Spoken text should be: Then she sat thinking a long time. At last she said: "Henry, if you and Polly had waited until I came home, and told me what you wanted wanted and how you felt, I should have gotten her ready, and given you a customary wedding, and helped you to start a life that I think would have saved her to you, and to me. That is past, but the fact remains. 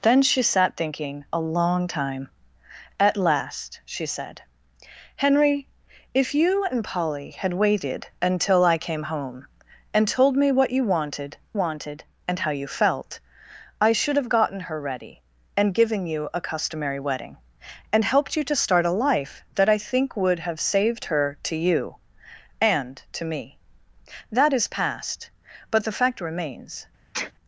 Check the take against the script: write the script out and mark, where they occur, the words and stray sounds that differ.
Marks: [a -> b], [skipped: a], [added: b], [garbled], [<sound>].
Then she sat thinking a long time. At last she said: "Henry, if you and Polly had waited until I came home, and told me what you wanted wanted and how you felt, I should have gotten her ready, and given you a customary wedding, and helped you to start a life that I think would have saved her to you, and to me. That is past, but the fact remains. [sneeze]